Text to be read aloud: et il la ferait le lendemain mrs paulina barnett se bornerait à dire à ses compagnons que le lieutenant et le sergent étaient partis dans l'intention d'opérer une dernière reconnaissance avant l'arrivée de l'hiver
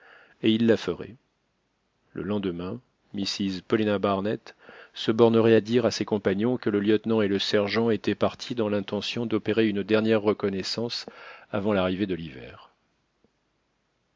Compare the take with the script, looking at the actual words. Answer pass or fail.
pass